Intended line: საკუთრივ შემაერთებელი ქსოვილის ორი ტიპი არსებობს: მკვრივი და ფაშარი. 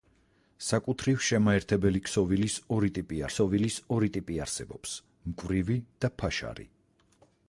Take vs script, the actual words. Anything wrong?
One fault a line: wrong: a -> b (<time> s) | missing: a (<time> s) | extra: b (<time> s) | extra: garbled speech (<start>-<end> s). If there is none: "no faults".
extra: ქსოვილის ორი ტიპი (3.3 s)